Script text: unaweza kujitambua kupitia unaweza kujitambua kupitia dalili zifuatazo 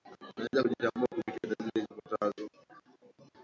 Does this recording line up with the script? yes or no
no